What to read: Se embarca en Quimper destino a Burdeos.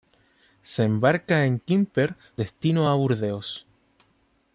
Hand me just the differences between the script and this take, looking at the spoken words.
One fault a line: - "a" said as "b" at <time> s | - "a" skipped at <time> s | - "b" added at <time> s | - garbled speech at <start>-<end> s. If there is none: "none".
none